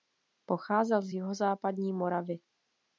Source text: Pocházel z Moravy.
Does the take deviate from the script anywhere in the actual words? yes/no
yes